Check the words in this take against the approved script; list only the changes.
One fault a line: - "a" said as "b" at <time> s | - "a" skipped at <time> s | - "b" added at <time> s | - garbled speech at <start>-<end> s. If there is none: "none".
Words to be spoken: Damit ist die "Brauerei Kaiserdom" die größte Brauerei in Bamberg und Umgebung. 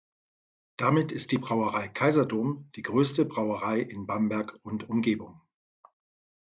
none